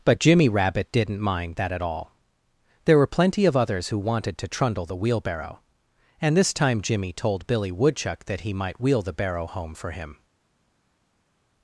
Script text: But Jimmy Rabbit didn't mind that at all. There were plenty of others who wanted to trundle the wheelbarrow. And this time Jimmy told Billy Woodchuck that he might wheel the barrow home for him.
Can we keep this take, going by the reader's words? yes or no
yes